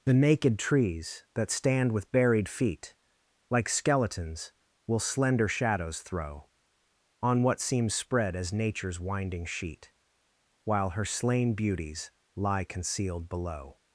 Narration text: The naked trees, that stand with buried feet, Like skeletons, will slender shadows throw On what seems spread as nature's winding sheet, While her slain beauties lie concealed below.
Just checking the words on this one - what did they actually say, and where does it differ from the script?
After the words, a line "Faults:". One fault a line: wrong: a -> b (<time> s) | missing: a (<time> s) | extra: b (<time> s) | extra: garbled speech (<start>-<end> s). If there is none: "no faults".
The naked trees, that stand with buried feet, Like skeletons, will slender shadows throw On what seems spread as nature's winding sheet, While her slain beauties lie concealed below.
Faults:
no faults